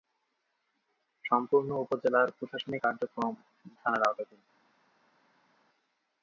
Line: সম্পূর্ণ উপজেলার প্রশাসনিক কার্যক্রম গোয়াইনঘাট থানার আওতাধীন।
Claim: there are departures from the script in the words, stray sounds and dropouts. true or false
true